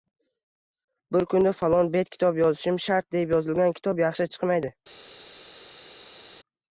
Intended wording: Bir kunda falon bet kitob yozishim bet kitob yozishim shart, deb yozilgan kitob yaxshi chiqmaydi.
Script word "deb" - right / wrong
right